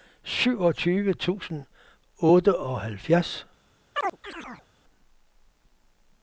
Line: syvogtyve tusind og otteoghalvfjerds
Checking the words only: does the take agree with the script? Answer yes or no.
yes